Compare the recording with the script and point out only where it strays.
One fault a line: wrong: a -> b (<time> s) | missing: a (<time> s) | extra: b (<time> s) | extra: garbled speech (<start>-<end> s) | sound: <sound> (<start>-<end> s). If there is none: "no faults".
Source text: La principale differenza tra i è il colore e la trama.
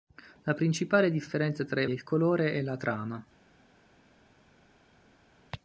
no faults